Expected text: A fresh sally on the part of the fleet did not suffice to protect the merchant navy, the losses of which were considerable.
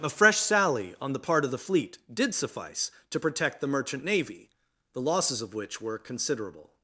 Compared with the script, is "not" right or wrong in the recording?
wrong